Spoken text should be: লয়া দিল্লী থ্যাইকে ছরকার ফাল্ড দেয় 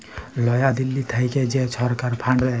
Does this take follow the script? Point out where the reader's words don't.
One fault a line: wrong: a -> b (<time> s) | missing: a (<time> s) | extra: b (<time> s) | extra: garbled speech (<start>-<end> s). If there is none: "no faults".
extra: যে (1.5 s)